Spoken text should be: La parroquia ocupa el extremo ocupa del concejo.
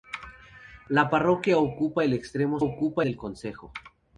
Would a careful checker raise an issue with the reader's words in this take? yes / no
no